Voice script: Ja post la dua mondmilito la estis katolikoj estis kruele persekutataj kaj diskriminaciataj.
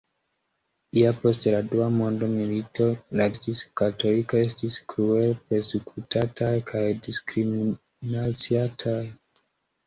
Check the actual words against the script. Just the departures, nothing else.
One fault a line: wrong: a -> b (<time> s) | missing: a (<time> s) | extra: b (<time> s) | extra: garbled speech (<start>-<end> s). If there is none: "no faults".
no faults